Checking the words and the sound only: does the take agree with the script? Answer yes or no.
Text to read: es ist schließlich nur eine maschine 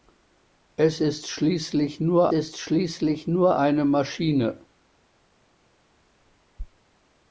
no